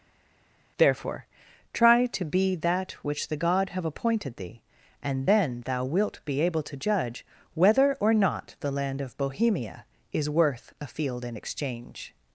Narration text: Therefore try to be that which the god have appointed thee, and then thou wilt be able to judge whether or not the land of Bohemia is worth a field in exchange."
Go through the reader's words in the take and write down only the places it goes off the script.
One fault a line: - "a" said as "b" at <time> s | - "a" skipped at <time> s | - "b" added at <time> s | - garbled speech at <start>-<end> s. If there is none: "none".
none